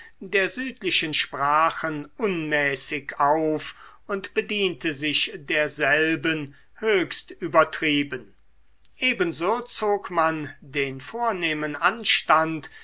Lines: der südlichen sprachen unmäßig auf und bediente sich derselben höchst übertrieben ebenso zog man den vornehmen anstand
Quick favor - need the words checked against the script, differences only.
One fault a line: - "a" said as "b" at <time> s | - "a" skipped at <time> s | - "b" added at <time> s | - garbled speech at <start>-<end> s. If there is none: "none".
none